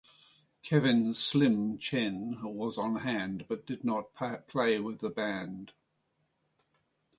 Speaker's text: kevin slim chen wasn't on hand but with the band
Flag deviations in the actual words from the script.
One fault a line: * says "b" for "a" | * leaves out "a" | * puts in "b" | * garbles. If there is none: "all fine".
* says "was" for "wasn't"
* puts in "did not play"